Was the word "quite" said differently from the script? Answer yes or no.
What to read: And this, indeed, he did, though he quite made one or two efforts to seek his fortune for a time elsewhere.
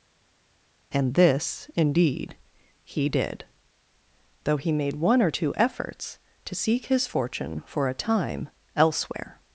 yes